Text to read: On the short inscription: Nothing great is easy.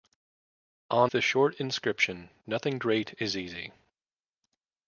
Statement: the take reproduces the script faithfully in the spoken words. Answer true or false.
true